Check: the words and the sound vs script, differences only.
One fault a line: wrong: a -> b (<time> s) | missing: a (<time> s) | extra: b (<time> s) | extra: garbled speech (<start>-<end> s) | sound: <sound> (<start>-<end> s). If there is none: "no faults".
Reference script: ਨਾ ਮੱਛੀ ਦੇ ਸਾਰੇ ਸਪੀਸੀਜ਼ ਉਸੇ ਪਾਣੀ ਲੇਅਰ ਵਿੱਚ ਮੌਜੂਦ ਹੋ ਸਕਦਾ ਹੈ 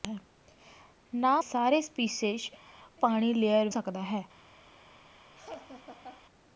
missing: ਮੱਛੀ ਦੇ (1.4 s)
missing: ਉਸੇ (2.5 s)
missing: ਵਿੱਚ ਮੌਜੂਦ ਹੋ (3.7 s)
sound: laugh (5.3-6.2 s)